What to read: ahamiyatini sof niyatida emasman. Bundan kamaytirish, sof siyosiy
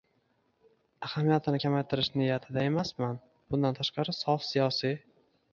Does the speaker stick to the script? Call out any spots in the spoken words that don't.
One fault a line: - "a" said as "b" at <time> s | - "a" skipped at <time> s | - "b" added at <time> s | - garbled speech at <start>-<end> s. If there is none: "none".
- "sof" said as "kamaytirish" at 1.6 s
- "kamaytirish" said as "tashqari" at 3.8 s